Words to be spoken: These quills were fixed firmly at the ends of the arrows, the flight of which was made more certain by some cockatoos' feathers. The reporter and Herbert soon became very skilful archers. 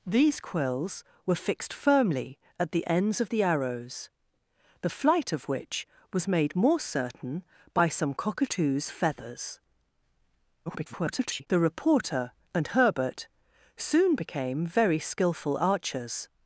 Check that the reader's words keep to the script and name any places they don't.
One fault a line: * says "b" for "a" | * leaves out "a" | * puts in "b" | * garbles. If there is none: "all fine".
* garbles